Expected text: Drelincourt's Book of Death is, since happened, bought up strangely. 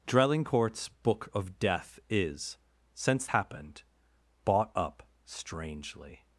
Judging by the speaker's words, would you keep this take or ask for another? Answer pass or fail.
pass